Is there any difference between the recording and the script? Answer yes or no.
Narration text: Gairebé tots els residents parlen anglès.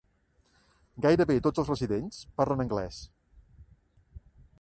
no